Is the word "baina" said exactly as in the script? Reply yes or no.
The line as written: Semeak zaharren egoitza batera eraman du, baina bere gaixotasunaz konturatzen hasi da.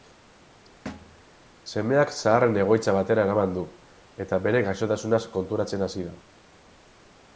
no